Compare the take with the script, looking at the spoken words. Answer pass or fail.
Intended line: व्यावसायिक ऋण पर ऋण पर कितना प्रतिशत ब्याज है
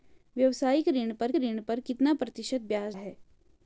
pass